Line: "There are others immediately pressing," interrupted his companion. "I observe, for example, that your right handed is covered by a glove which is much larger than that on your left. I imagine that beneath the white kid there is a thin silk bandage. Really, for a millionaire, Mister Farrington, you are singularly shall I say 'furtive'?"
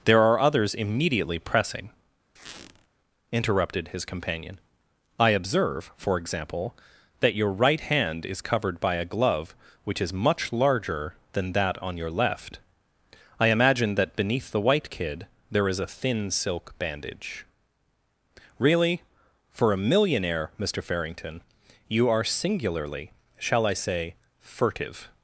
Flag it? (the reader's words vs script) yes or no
yes